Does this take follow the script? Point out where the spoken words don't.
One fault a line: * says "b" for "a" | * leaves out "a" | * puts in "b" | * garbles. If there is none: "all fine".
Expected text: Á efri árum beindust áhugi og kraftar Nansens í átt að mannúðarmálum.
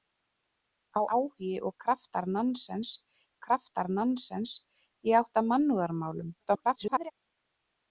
* says "áhugi og kraftar Nansens" for "efri árum beindust áhugi og"
* garbles